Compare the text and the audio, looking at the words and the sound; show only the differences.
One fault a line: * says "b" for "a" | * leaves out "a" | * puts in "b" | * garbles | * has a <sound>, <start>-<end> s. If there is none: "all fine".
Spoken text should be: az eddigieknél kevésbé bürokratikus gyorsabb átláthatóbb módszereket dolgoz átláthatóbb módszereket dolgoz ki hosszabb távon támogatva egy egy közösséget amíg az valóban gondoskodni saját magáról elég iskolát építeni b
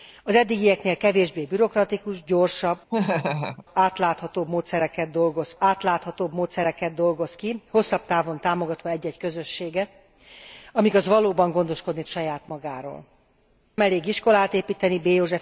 * has a laugh, 2.9-3.7 s